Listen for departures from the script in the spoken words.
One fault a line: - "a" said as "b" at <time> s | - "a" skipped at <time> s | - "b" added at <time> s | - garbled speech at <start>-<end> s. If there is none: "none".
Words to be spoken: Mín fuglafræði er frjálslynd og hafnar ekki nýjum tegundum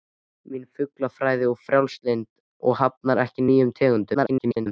- garbled speech at 4.1-4.7 s